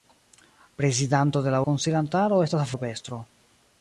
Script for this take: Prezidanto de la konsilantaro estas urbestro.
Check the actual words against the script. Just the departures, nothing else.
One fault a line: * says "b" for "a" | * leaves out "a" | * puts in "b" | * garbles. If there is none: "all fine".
all fine